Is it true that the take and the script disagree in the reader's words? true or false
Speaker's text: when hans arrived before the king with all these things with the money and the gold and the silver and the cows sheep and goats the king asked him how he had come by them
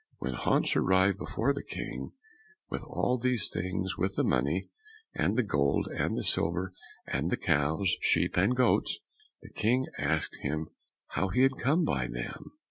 false